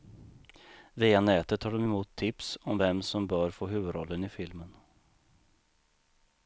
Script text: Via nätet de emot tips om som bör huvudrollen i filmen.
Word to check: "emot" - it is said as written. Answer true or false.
true